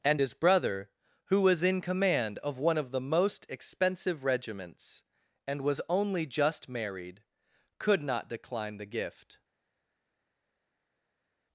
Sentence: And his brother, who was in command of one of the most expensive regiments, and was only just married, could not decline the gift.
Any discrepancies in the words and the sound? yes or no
no